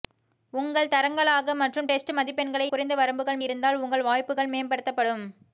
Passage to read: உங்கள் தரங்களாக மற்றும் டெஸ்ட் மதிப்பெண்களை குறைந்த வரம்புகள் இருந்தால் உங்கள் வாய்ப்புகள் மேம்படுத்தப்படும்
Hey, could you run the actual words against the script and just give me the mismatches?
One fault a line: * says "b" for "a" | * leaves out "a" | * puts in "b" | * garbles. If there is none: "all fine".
all fine